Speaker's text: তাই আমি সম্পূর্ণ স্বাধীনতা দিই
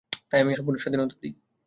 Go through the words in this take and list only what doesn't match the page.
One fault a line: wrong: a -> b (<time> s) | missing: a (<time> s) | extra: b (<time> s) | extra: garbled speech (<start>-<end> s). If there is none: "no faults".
no faults